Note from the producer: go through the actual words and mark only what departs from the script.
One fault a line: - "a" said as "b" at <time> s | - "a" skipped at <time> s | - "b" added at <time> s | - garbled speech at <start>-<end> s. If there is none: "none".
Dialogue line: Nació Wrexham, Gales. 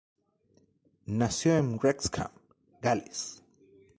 - "en" added at 1.6 s